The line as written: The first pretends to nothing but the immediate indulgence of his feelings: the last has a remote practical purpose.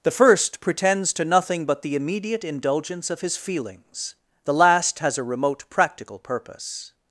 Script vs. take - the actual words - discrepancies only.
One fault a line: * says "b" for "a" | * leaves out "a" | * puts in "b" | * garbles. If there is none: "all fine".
all fine